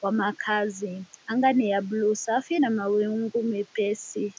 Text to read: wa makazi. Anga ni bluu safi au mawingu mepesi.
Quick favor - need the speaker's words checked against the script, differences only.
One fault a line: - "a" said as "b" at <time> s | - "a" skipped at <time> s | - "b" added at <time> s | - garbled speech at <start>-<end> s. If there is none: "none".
- "ya" added at 1.7 s
- "au" said as "na" at 2.6 s